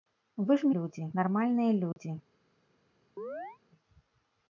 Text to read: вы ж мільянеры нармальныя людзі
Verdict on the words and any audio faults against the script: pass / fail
fail